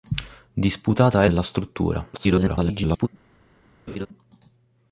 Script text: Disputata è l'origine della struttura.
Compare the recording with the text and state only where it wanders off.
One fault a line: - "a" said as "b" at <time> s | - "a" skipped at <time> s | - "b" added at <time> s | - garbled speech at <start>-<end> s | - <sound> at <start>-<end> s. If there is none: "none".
- "l'origine" skipped at 1.3 s
- garbled speech at 2.1-3.1 s
- laugh at 3.9-4.1 s